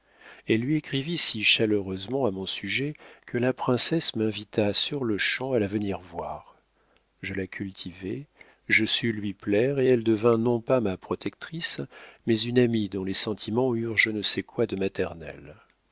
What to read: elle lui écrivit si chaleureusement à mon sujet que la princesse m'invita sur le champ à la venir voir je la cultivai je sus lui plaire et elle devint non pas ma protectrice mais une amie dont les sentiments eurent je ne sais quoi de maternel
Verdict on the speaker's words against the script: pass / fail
pass